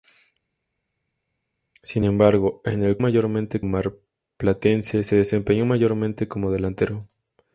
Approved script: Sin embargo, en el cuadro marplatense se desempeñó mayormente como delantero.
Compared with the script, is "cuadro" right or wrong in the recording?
wrong